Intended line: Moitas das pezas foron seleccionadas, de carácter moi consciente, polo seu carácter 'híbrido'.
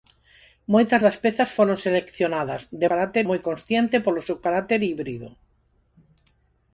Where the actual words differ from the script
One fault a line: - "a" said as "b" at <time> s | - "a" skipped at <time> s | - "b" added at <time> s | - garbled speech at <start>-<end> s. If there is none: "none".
none